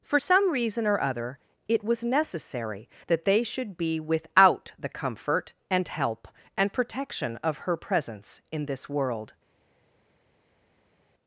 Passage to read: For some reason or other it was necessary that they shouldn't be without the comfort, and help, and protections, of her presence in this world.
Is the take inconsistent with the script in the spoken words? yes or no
yes